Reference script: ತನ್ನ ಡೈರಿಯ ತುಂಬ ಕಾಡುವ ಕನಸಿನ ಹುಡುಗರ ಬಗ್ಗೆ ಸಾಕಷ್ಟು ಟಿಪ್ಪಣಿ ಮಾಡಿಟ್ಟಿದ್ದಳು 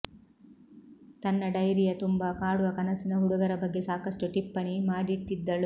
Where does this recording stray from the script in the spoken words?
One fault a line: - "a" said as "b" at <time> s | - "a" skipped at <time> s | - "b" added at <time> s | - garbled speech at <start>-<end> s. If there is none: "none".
none